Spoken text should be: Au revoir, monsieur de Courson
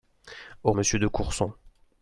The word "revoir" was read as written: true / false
false